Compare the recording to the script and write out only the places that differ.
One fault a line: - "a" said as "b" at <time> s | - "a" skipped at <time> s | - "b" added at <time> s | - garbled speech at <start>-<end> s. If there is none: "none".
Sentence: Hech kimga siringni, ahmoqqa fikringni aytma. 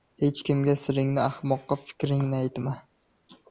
none